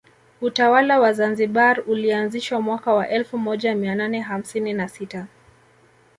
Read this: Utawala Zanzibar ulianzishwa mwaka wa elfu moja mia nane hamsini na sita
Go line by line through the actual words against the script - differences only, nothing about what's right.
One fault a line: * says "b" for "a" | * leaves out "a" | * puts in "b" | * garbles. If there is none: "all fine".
* puts in "wa"